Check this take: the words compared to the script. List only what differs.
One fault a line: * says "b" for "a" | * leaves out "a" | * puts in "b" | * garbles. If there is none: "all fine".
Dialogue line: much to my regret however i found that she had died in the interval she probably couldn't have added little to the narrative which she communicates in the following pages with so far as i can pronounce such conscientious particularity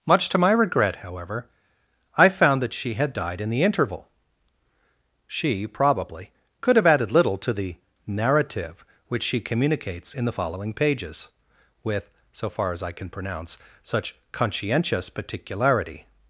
* says "could" for "couldn't"